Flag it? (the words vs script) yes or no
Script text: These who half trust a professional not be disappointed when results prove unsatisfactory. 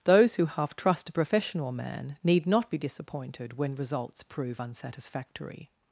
yes